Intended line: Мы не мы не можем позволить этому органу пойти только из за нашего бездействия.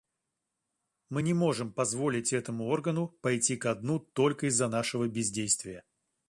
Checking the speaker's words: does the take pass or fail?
fail